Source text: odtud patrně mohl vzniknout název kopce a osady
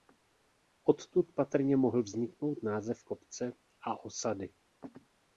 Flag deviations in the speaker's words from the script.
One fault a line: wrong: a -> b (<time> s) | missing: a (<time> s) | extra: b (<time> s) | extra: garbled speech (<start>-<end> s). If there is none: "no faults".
no faults